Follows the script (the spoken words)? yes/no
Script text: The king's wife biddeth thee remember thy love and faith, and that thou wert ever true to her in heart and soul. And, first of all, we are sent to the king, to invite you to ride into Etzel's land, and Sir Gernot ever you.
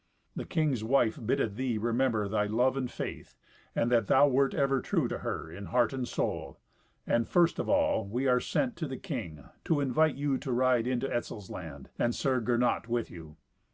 no